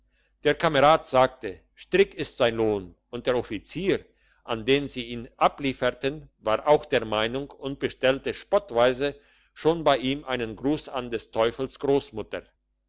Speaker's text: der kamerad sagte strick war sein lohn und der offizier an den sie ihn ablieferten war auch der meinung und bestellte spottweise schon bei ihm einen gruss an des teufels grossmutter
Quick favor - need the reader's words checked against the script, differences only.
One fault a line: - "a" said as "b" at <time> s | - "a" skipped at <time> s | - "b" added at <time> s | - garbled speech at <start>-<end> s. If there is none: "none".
- "war" said as "ist" at 2.1 s